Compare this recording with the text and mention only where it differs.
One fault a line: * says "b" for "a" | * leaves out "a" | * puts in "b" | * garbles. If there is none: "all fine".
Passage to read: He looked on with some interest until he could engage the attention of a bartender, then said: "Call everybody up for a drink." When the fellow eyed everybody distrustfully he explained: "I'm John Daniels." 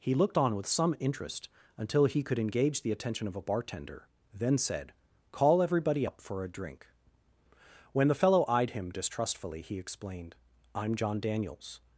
* says "him" for "everybody"